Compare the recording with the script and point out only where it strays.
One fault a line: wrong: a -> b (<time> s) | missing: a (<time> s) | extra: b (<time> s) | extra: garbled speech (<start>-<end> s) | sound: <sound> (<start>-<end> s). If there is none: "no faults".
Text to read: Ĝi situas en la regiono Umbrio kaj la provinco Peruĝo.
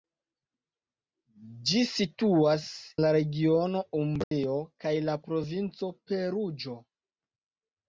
missing: en (2.6 s)
sound: dropout (4.2-4.3 s)